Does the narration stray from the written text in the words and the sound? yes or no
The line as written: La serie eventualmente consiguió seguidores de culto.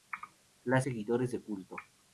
yes